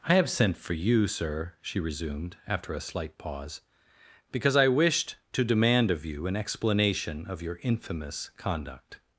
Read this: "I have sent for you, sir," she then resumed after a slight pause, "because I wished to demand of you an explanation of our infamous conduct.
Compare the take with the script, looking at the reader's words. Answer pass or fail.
fail